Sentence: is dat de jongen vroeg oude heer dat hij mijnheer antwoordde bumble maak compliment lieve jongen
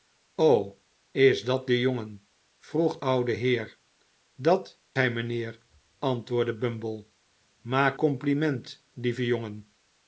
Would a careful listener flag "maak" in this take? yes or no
no